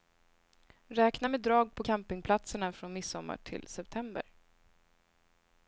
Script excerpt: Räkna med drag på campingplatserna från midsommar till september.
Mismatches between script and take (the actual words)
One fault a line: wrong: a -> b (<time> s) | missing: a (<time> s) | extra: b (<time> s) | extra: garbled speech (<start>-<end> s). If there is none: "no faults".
no faults